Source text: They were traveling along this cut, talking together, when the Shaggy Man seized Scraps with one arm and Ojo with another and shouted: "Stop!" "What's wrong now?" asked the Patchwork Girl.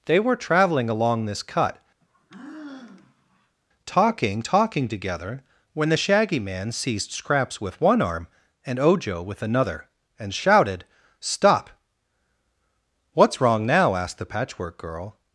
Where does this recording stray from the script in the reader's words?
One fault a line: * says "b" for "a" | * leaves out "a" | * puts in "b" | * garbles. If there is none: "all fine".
* puts in "talking"